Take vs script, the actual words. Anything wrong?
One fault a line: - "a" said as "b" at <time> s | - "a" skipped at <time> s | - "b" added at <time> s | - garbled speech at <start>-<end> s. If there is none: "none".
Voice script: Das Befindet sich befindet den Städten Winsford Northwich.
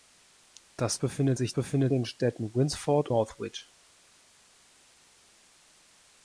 none